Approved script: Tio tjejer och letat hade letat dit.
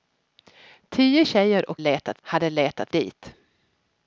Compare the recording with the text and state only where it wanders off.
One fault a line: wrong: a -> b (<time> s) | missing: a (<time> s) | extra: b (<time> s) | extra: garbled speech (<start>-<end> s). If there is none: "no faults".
no faults